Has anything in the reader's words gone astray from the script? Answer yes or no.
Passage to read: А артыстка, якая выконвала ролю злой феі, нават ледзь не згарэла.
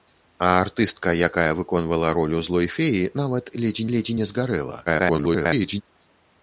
yes